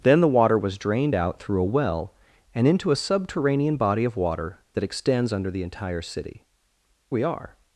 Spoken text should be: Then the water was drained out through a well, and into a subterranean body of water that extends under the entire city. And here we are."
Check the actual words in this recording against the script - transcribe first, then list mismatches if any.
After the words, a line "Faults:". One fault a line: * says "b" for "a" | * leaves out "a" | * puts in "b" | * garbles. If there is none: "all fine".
Then the water was drained out through a well, and into a subterranean body of water that extends under the entire city. We are."
Faults:
* leaves out "And here"